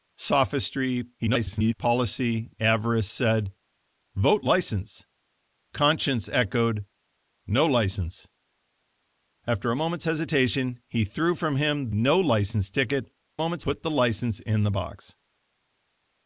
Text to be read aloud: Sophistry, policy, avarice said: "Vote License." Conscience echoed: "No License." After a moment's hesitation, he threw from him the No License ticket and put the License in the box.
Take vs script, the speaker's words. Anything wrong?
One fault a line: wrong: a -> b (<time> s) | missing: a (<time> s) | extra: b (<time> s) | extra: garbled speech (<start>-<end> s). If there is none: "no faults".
extra: garbled speech (1.2-1.7 s)
missing: the (11.9 s)
wrong: and -> moment's (13.4 s)